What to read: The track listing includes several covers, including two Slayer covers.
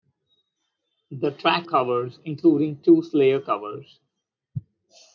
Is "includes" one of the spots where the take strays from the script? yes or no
yes